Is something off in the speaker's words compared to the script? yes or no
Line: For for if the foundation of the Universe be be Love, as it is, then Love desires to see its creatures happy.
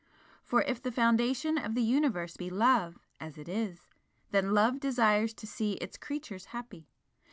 yes